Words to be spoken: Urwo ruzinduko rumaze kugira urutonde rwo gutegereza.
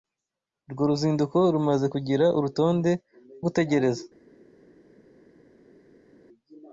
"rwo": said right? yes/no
no